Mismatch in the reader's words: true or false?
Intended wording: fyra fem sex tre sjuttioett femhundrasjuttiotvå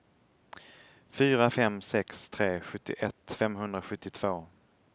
false